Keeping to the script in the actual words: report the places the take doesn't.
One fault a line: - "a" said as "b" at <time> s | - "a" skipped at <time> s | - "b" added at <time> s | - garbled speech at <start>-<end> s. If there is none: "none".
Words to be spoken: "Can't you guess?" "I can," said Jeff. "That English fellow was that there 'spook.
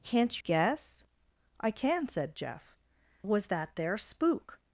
- "you" skipped at 0.4 s
- "That English fellow" skipped at 2.7 s